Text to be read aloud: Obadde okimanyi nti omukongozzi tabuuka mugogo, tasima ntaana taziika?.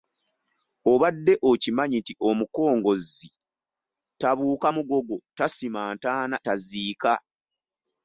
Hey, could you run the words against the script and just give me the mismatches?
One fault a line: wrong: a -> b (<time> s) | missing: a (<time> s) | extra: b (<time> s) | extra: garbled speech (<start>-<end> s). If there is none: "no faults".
no faults